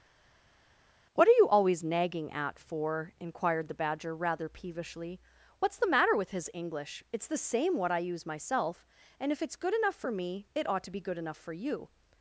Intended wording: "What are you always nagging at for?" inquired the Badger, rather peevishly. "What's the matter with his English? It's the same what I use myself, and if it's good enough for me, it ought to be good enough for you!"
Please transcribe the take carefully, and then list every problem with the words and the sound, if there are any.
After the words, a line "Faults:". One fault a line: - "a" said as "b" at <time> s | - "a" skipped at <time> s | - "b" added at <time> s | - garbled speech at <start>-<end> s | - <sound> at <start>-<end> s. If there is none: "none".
"What are you always nagging at for?" inquired the Badger, rather peevishly. "What's the matter with his English? It's the same what I use myself, and if it's good enough for me, it ought to be good enough for you!"
Faults:
none